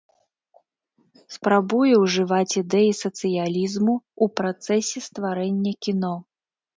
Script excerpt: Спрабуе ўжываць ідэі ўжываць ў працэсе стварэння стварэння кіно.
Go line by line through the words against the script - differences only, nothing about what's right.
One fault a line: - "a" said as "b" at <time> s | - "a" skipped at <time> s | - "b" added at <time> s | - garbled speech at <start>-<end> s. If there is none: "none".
- "ўжываць" said as "сацыялізму" at 3.0 s
- "стварэння" skipped at 5.7 s